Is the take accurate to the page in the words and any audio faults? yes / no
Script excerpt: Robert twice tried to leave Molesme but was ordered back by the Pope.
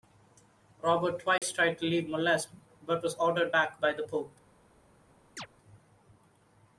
no